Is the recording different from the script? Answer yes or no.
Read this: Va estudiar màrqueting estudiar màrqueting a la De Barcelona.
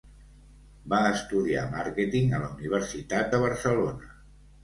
yes